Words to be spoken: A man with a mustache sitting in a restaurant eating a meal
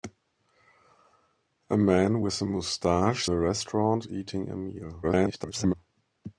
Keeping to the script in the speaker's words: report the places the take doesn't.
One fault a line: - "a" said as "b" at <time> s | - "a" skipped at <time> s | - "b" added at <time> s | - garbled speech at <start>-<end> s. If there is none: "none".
- "sitting in" skipped at 3.3 s
- garbled speech at 5.0-5.7 s